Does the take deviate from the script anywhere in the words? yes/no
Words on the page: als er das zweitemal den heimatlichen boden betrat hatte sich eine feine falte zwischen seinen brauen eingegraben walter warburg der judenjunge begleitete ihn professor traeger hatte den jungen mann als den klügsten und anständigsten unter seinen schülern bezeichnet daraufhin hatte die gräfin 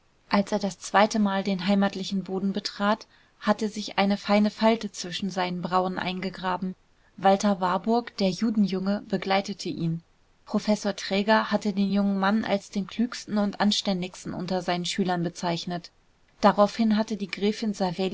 no